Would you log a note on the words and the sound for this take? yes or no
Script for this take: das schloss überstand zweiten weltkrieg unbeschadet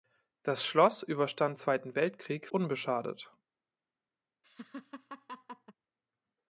yes